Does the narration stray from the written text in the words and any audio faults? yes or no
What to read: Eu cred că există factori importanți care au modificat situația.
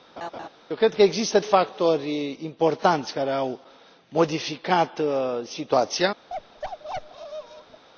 yes